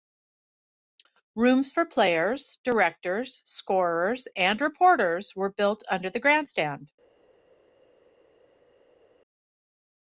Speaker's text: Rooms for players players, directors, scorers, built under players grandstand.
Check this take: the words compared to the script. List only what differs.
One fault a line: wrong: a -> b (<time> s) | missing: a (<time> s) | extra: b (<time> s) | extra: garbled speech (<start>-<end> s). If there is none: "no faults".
missing: players (2.6 s)
extra: and reporters were (4.3 s)
wrong: players -> the (6.1 s)